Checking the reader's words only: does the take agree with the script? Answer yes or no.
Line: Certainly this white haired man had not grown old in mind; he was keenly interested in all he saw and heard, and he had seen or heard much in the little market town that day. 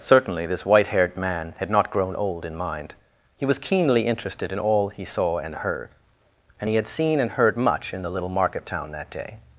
no